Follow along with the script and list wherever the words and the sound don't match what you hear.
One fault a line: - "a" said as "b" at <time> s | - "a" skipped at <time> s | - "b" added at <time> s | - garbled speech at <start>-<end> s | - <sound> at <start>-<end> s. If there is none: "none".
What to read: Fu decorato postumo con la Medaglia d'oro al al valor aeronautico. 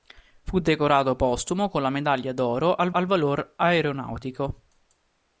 none